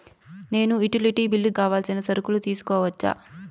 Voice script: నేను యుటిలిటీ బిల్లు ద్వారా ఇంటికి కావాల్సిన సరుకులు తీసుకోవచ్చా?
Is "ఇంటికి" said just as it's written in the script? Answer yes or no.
no